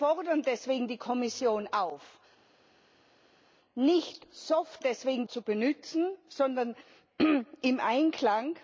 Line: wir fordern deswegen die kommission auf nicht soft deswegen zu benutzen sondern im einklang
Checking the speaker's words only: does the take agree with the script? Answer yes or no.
yes